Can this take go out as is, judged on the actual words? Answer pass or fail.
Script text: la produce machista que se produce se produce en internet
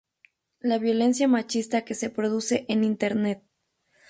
fail